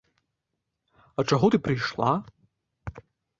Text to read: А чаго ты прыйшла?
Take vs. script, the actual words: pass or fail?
pass